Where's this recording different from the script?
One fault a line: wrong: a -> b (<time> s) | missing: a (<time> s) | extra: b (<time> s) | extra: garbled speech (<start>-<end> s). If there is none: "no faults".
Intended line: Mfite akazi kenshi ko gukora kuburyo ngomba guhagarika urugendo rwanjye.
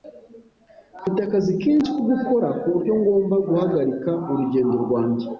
no faults